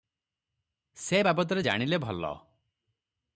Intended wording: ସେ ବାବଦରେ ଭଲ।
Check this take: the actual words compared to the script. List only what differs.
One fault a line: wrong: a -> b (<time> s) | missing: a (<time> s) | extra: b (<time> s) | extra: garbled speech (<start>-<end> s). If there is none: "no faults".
extra: ଜାଣିଲେ (1.6 s)